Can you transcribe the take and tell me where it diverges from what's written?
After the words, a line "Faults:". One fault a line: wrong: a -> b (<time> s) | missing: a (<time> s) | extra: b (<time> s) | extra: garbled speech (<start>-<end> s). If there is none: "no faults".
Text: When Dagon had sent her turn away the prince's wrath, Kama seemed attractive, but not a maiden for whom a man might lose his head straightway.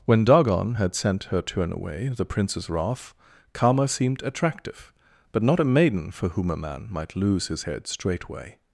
When Dagon had sent her turn away the prince's wrath, Kama seemed attractive, but not a maiden for whom a man might lose his head straightway.
Faults:
no faults